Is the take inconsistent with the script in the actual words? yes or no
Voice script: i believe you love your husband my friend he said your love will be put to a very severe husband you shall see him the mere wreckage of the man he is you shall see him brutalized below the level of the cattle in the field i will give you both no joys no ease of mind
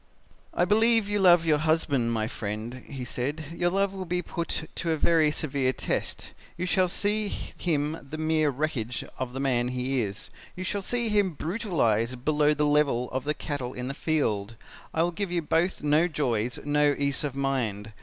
yes